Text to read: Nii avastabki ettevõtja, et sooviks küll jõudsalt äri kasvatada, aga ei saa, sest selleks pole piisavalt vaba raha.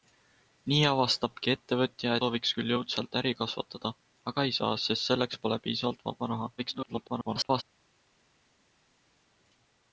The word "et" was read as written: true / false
false